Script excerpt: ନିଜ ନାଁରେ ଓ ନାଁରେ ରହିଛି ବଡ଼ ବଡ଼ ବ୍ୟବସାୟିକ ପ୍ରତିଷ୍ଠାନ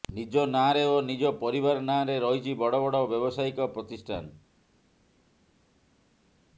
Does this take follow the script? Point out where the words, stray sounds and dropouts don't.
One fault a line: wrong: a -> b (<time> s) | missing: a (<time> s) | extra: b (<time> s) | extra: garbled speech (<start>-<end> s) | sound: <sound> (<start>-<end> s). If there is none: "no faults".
extra: ନିଜ ପରିବାର (1.0 s)